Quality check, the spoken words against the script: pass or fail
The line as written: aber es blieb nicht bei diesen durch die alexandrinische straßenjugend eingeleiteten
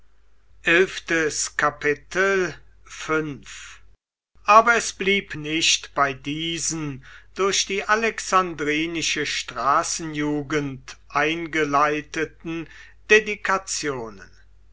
pass